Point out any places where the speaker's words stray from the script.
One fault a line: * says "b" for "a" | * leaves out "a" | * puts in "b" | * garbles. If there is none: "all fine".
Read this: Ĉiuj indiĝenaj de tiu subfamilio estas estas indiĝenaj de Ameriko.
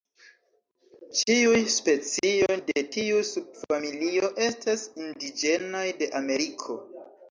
* says "specioj" for "indiĝenaj"
* leaves out "estas"